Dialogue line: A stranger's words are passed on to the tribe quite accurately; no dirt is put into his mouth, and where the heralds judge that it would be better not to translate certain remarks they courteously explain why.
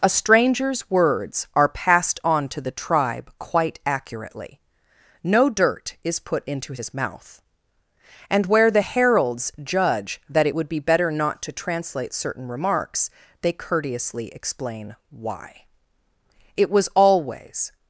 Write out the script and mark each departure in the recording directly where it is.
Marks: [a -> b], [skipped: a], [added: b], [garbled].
A stranger's words are passed on to the tribe quite accurately; no dirt is put into his mouth, and where the heralds judge that it would be better not to translate certain remarks they courteously explain why. [added: It was always]